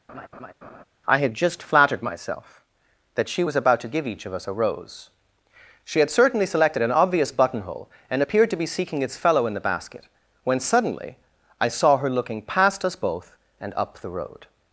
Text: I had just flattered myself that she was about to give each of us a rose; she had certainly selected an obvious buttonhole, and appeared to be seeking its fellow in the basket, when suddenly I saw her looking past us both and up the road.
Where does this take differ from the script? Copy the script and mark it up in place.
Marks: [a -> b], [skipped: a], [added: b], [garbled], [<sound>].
[laugh] I had just flattered myself that she was about to give each of us a rose; she had certainly selected an obvious buttonhole, and appeared to be seeking its fellow in the basket, when suddenly I saw her looking past us both and up the road.